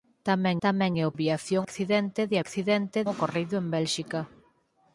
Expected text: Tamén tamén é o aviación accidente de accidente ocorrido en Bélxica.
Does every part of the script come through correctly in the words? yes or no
yes